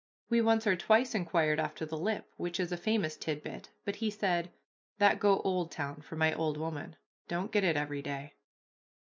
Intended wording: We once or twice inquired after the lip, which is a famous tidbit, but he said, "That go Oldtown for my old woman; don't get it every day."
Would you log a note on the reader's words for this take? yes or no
no